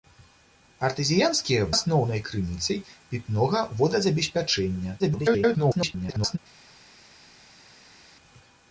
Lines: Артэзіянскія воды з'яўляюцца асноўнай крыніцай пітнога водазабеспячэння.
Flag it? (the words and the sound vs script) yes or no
yes